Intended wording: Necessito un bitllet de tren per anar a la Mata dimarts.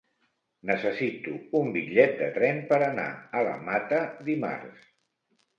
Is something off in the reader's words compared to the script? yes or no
no